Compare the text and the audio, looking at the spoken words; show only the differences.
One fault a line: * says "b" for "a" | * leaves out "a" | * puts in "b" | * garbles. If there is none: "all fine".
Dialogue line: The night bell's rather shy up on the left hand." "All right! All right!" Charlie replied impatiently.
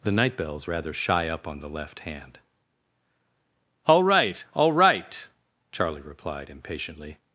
all fine